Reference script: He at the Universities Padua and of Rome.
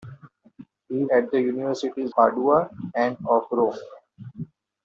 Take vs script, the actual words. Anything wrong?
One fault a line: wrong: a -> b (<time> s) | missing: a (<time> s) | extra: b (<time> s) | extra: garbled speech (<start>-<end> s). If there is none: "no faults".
no faults